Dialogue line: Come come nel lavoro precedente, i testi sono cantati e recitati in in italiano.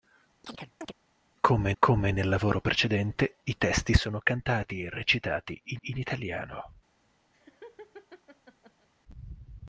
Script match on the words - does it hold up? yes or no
yes